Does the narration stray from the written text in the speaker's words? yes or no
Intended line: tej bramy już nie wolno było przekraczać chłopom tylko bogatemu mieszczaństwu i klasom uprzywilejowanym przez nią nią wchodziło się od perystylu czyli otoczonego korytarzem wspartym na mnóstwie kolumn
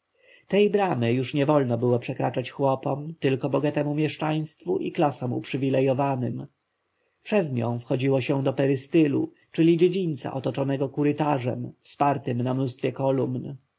yes